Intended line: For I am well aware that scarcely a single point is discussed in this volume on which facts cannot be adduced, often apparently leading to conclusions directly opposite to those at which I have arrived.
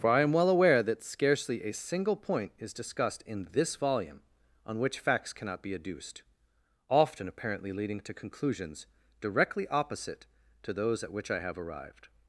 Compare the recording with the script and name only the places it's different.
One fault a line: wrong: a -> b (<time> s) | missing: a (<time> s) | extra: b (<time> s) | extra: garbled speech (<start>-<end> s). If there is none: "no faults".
no faults